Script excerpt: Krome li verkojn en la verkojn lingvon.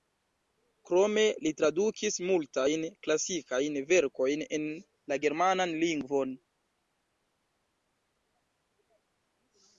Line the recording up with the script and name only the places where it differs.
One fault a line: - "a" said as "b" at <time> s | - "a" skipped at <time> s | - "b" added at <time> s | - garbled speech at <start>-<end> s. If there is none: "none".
- "tradukis multajn klasikajn" added at 1.6 s
- "verkojn" said as "germanan" at 5.3 s